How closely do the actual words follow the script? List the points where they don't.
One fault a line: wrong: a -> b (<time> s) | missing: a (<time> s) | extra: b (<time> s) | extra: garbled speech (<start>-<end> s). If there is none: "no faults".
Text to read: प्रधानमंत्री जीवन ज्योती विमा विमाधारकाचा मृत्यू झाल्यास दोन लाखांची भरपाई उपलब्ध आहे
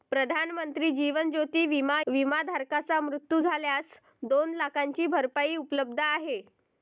no faults